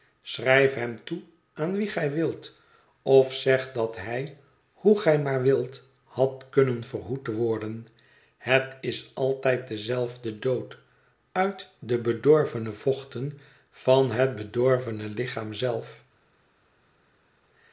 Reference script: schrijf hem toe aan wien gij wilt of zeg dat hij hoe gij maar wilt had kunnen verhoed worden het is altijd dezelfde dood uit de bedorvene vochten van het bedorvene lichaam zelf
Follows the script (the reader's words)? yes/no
yes